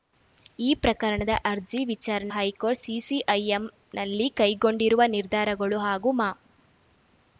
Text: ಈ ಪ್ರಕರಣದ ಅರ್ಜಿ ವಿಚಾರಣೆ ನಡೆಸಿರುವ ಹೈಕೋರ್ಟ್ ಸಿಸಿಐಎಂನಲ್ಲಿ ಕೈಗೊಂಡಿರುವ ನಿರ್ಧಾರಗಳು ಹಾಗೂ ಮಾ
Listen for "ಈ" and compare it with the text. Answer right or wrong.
right